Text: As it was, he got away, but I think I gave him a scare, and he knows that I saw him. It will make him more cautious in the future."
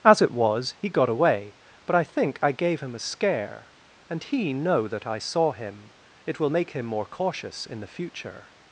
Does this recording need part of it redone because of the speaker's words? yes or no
yes